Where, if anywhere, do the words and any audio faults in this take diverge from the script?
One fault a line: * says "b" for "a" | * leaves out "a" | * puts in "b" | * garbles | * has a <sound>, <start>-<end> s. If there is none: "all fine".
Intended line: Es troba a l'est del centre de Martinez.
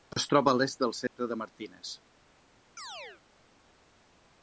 * has a dropout, 1.1-1.2 s
* has a chirp, 2.8-3.2 s